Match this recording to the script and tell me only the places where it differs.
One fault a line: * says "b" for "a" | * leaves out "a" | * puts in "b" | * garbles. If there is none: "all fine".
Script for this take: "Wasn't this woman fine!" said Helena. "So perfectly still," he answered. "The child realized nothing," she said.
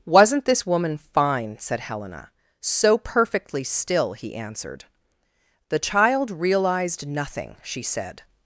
all fine